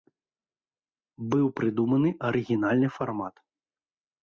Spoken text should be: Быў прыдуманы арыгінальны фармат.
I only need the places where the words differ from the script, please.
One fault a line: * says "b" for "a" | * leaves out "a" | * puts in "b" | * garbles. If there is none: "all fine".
all fine